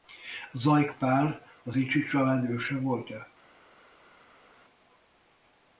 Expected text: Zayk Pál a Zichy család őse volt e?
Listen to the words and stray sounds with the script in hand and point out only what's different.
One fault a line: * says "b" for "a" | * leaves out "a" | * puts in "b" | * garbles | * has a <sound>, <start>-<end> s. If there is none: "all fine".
all fine